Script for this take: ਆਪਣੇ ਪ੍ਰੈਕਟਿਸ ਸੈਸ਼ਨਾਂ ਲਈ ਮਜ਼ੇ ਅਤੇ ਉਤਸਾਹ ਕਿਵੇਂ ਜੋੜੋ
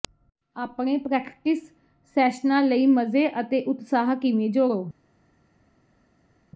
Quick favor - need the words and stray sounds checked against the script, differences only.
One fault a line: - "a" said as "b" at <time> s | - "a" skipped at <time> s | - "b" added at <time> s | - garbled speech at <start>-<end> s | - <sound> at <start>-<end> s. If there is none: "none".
none